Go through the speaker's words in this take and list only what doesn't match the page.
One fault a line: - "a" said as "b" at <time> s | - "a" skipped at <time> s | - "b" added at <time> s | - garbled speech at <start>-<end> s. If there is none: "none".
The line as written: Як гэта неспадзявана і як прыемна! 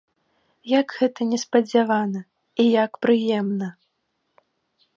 none